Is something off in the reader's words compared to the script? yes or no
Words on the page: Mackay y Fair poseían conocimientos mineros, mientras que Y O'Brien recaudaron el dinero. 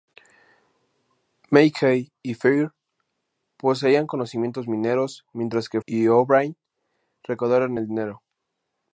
no